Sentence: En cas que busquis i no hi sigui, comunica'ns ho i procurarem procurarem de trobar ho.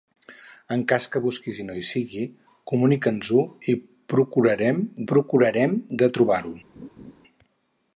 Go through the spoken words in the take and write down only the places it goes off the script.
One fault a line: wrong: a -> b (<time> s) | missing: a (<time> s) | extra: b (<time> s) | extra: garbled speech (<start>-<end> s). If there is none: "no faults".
no faults